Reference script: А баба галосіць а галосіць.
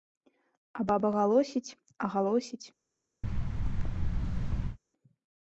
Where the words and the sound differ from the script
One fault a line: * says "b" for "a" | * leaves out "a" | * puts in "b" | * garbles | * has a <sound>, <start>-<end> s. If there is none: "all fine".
* has a thud, 3.2-4.8 s